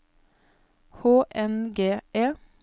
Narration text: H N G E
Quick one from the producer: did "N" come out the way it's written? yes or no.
yes